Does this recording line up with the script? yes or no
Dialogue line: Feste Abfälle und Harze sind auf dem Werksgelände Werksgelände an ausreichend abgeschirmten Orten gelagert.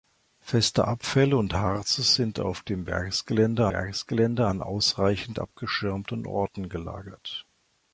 yes